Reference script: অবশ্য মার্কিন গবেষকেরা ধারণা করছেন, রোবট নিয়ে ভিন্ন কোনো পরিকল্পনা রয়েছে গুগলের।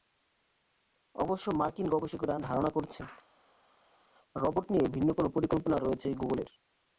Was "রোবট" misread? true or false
false